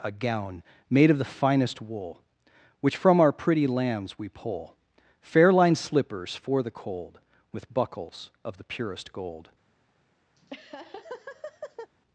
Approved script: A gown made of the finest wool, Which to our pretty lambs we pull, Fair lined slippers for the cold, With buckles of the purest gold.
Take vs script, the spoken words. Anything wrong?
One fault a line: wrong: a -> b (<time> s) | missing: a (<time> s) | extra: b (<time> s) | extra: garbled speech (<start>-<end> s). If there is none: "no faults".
wrong: to -> from (3.0 s)